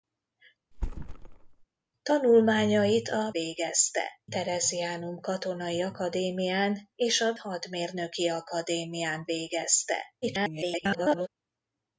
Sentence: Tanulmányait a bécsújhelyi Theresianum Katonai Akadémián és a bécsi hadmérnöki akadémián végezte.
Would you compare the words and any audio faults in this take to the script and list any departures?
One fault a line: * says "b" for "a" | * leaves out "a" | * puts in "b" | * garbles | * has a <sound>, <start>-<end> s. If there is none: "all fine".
* has a thud, 0.7-1.7 s
* says "végezte" for "bécsújhelyi"
* leaves out "bécsi"
* garbles